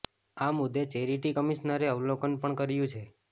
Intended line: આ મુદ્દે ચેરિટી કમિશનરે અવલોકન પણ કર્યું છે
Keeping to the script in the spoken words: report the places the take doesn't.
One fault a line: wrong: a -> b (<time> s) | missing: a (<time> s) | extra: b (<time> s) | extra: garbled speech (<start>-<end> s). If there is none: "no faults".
no faults